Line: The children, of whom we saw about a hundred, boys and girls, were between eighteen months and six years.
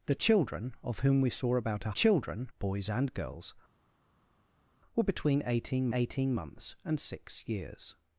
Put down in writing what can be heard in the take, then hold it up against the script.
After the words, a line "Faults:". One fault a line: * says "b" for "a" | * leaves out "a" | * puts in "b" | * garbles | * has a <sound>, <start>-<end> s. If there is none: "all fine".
The children, of whom we saw about a children, boys and girls, were between eighteen eighteen months and six years.
Faults:
* says "children" for "hundred"
* puts in "eighteen"